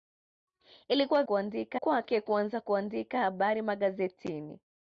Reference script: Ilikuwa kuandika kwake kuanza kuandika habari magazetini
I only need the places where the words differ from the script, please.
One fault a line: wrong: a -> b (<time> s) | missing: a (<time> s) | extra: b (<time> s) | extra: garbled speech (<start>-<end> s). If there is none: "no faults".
no faults